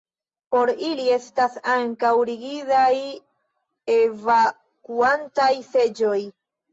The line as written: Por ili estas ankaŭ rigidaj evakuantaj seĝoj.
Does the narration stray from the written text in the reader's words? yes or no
no